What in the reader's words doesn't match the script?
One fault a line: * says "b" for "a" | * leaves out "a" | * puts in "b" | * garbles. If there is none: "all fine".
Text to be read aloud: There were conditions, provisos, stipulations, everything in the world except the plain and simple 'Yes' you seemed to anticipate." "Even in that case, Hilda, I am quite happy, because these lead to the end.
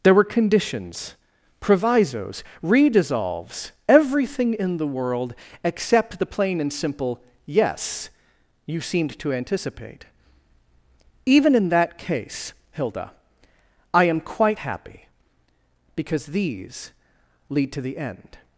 * says "redissolves" for "stipulations"